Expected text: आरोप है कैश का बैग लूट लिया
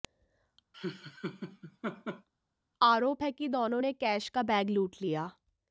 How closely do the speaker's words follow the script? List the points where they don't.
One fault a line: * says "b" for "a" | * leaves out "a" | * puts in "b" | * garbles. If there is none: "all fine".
* puts in "कि दोनों ने"